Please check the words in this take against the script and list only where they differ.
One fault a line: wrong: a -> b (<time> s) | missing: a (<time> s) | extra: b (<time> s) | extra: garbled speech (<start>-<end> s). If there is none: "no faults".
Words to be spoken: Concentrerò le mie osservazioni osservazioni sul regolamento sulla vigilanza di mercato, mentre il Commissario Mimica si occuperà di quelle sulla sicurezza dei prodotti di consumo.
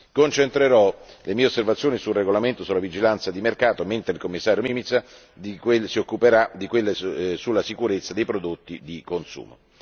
missing: osservazioni (2.0 s)